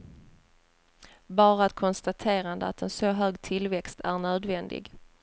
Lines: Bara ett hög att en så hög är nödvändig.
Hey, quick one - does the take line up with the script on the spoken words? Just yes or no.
no